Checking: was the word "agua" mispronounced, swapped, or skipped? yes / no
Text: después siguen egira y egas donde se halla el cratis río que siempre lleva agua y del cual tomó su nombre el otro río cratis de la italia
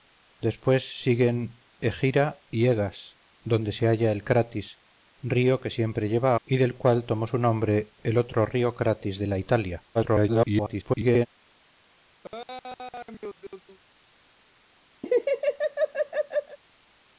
yes